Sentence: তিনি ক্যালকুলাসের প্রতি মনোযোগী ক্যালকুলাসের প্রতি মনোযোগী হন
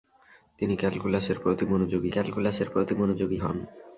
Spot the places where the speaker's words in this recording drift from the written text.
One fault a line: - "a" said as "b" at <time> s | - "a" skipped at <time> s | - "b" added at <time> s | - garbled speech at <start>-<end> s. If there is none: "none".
none